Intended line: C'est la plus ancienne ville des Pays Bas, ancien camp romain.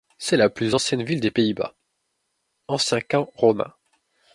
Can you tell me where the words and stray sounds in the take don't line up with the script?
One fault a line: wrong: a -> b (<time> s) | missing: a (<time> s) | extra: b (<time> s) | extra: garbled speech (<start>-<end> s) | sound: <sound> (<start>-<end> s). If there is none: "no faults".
no faults